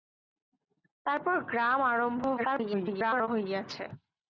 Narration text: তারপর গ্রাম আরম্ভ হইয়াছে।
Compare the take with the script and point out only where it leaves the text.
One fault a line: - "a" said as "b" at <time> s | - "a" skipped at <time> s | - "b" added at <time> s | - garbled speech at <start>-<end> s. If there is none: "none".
- garbled speech at 2.4-3.3 s